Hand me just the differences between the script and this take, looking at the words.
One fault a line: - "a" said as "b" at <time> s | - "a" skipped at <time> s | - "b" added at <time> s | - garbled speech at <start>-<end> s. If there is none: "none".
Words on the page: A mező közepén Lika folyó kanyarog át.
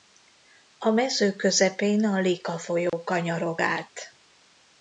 - "a" added at 2.0 s